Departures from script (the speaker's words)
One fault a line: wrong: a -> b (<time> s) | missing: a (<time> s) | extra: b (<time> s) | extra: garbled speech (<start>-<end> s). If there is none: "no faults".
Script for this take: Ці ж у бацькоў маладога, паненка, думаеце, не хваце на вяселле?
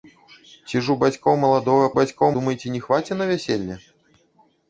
wrong: паненка -> бацькоў (2.0 s)